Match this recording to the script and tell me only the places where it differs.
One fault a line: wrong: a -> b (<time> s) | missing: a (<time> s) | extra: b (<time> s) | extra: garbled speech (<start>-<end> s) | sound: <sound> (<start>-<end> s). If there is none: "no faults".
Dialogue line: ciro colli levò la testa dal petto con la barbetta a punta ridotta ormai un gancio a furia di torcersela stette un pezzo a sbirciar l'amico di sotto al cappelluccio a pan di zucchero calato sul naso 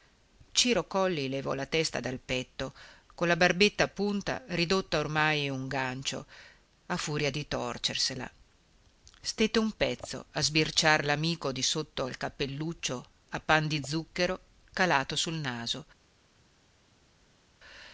no faults